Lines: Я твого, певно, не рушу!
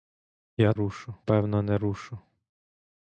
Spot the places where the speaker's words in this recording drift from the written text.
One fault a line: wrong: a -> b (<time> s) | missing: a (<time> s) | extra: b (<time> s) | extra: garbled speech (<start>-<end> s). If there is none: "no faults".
wrong: твого -> рушу (0.7 s)